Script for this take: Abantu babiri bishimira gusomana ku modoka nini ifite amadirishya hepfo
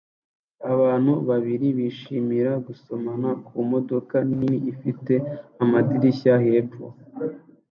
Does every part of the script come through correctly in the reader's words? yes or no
yes